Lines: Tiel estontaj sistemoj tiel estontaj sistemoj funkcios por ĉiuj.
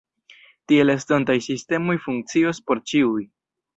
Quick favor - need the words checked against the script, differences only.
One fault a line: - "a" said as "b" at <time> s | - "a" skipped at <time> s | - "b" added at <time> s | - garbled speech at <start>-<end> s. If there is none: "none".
- "tiel estontaj sistemoj" skipped at 2.0 s